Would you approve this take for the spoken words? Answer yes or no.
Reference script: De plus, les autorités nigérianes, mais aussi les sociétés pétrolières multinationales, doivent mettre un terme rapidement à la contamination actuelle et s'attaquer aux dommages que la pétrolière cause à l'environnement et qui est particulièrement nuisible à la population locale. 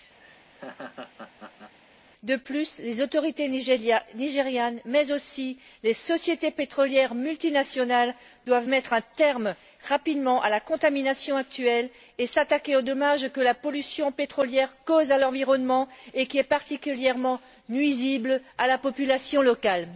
no